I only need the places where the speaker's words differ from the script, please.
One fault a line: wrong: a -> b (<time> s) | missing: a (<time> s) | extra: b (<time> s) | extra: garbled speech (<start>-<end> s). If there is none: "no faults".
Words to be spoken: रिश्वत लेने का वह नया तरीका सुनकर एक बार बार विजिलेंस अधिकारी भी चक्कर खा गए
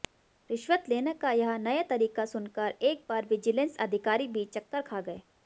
wrong: वह -> यह (1.3 s)
missing: बार (3.2 s)